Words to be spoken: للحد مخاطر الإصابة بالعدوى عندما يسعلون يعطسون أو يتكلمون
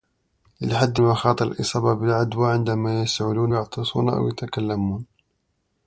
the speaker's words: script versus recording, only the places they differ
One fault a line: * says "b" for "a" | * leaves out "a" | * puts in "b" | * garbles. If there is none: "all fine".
all fine